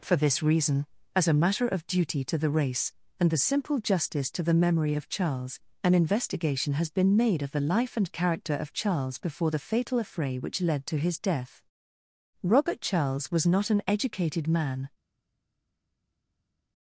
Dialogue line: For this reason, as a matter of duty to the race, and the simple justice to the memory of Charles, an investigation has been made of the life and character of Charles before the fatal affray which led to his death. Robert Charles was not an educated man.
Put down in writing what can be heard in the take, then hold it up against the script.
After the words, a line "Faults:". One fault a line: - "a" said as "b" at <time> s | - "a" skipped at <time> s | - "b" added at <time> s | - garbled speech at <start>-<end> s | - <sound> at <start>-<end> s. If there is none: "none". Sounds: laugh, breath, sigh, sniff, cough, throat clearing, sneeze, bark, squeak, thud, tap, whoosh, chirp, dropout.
For this reason, as a matter of duty to the race, and the simple justice to the memory of Charles, an investigation has been made of the life and character of Charles before the fatal affray which led to his death. Robert Charles was not an educated man.
Faults:
none